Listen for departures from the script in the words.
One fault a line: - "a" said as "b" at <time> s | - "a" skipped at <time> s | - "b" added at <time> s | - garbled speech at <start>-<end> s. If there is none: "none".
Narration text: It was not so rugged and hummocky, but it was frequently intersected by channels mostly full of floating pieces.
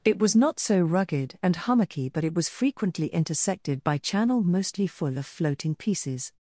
- "channels" said as "channel" at 4.0 s